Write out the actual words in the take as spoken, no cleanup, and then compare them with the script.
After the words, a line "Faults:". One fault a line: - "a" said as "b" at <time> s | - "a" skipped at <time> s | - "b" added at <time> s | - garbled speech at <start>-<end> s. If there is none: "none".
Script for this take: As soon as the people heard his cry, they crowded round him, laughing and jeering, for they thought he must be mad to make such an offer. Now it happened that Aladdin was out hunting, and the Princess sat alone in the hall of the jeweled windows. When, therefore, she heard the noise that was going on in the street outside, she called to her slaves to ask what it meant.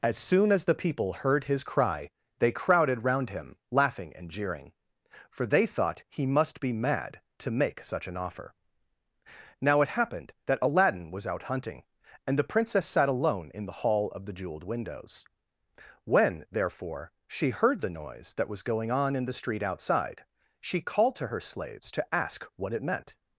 As soon as the people heard his cry, they crowded round him, laughing and jeering, for they thought he must be mad to make such an offer. Now it happened that Aladdin was out hunting, and the Princess sat alone in the hall of the jeweled windows. When, therefore, she heard the noise that was going on in the street outside, she called to her slaves to ask what it meant.
Faults:
none